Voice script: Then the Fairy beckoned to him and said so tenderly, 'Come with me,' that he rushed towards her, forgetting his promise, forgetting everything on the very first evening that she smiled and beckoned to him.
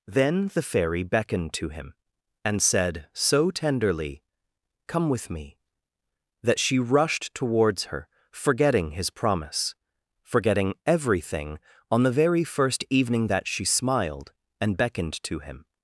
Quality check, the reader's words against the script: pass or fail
fail